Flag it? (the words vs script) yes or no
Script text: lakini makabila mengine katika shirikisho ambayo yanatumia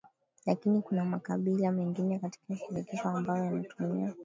yes